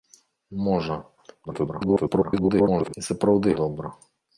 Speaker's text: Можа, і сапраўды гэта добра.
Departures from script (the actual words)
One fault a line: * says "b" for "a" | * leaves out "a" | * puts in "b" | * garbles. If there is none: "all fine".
* garbles
* leaves out "гэта"